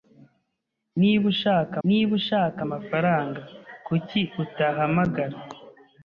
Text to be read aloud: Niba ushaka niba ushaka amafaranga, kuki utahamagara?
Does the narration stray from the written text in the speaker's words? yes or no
no